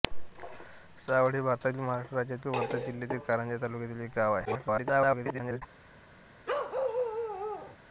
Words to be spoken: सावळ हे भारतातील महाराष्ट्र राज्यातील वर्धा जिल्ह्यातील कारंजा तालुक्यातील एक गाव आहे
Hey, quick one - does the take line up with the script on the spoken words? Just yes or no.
no